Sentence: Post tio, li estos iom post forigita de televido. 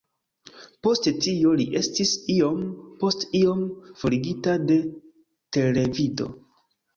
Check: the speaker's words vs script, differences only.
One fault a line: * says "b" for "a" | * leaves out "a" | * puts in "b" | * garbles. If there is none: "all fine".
* says "estis" for "estos"
* puts in "iom"